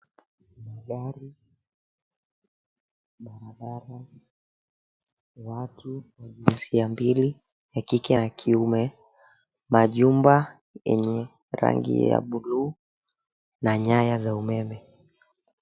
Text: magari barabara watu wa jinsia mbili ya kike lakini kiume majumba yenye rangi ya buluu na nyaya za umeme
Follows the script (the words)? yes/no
no